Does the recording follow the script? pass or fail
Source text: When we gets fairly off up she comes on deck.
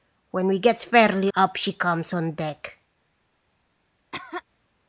fail